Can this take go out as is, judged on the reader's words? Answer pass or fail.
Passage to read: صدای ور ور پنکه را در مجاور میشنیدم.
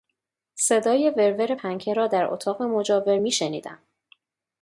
fail